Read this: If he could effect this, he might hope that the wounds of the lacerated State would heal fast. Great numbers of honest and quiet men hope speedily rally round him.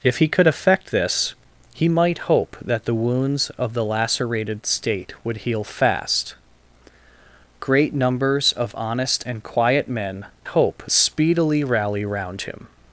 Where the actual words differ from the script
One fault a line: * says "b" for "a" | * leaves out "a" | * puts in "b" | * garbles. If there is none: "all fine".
all fine